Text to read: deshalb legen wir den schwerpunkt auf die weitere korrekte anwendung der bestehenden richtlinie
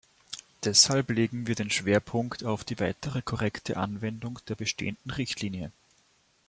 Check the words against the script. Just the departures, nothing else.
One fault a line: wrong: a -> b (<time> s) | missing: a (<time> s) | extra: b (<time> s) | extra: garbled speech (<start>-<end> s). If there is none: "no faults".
no faults